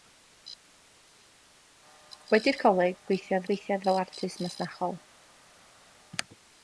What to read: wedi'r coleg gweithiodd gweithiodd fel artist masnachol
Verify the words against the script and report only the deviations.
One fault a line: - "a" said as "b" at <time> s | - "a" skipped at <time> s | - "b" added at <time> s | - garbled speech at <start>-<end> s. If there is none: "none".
none